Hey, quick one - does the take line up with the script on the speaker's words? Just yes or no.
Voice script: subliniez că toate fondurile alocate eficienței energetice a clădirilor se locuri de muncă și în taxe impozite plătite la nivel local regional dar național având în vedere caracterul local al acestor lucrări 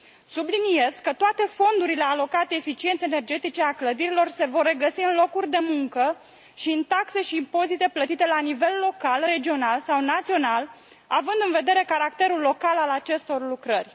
no